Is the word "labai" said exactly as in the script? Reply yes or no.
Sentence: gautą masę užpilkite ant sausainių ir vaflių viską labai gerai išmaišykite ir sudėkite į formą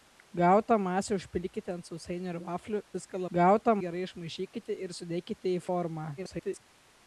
no